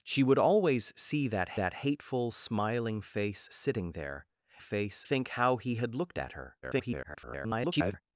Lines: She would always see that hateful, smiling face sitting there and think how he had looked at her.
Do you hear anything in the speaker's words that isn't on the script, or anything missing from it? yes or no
yes